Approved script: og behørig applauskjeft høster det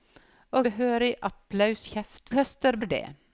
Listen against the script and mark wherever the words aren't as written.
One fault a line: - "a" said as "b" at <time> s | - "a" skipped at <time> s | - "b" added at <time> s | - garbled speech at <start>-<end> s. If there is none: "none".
none